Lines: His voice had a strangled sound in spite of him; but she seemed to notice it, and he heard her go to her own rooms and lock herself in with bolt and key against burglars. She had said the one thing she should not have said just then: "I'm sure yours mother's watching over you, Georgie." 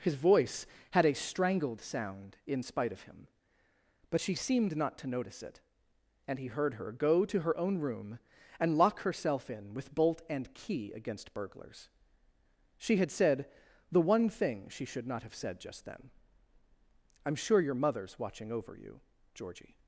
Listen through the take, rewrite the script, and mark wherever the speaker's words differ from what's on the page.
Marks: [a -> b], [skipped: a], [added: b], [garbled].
His voice had a strangled sound in spite of him; but she seemed [added: not] to notice it, and he heard her go to her own [rooms -> room] and lock herself in with bolt and key against burglars. She had said the one thing she should not have said just then: "I'm sure [yours -> your] mother's watching over you, Georgie."